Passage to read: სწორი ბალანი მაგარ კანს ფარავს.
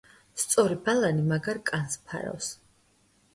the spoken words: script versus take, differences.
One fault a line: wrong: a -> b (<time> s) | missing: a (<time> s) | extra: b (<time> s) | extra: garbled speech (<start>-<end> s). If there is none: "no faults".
no faults